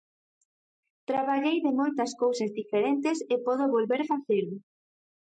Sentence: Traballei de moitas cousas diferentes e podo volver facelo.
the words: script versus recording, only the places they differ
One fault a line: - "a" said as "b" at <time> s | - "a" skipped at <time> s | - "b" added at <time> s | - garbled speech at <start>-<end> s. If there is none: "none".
none